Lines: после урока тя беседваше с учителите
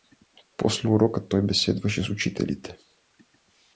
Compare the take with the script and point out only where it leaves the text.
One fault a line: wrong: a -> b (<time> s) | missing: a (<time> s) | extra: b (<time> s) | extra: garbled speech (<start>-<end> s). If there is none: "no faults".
wrong: тя -> той (1.3 s)